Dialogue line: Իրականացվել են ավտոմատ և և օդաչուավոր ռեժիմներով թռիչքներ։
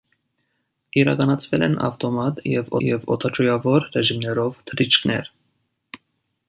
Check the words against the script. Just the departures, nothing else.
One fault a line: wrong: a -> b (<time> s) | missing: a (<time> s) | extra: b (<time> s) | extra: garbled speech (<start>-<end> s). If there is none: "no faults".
no faults